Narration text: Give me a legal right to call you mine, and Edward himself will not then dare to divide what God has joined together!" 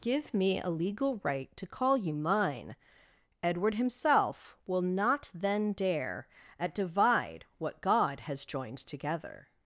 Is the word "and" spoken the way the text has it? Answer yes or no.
no